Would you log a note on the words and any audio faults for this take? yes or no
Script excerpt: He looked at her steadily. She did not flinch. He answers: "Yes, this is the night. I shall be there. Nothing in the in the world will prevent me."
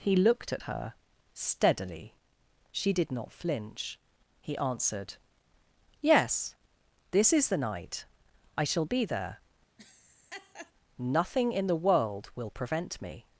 yes